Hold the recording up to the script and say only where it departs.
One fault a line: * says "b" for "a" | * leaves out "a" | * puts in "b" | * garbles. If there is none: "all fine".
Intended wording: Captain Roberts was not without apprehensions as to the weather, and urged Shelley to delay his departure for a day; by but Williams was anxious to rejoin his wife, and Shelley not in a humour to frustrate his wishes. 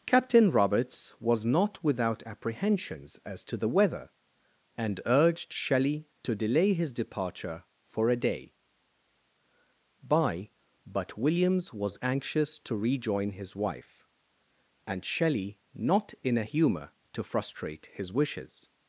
all fine